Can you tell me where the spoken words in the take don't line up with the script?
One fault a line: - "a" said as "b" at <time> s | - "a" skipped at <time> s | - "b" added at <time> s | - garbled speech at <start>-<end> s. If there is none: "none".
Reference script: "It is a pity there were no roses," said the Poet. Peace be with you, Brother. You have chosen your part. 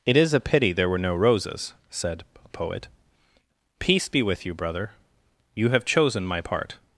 - "the" said as "a" at 2.4 s
- "your" said as "my" at 6.2 s